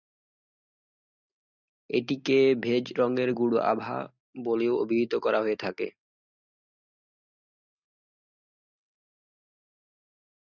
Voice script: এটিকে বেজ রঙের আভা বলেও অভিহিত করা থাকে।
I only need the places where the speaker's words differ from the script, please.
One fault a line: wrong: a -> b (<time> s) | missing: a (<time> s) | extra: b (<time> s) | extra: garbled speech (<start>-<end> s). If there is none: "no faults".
extra: গূঢ় (3.3 s)
extra: হয়ে (5.4 s)